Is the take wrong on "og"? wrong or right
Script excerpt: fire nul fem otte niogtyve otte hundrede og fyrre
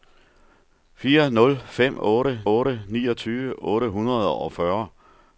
right